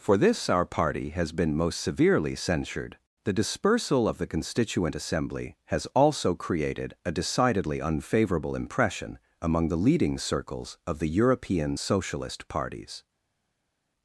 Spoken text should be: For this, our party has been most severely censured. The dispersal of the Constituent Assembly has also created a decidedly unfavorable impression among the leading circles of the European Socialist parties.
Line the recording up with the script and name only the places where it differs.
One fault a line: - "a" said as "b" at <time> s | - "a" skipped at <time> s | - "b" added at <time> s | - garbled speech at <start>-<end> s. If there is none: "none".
none